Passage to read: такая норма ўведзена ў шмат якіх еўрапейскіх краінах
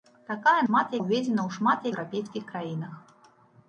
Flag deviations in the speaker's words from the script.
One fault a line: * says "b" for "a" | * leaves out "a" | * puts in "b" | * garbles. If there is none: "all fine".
* says "шмат" for "норма"
* leaves out "якіх"